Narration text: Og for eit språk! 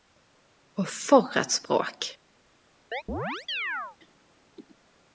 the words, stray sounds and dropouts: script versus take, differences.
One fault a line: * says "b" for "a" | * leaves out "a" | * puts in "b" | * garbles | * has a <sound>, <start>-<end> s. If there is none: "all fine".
* has a chirp, 2.9-4.0 s